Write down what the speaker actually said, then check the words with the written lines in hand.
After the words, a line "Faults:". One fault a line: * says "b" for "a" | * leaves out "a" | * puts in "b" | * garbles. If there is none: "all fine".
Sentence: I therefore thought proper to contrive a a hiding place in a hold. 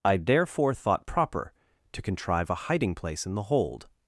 I therefore thought proper to contrive a hiding place in the hold.
Faults:
* leaves out "a"
* says "the" for "a"